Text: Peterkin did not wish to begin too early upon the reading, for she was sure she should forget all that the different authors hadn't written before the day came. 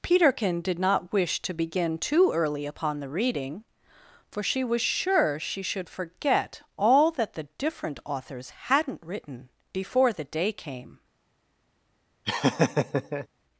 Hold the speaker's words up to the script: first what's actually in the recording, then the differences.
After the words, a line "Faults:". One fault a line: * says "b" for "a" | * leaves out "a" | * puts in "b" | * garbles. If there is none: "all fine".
Peterkin did not wish to begin too early upon the reading, for she was sure she should forget all that the different authors hadn't written before the day came.
Faults:
all fine